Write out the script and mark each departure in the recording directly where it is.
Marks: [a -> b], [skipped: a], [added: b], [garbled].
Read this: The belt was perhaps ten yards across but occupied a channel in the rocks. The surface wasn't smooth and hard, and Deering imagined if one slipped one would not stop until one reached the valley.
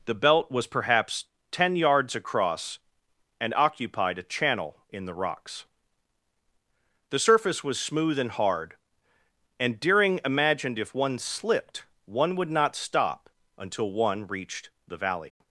The belt was perhaps ten yards across [but -> and] occupied a channel in the rocks. The surface [wasn't -> was] smooth and hard, and Deering imagined if one slipped one would not stop until one reached the valley.